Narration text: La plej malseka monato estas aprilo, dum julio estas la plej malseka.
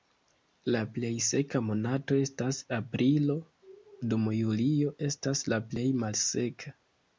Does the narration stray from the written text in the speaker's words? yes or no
yes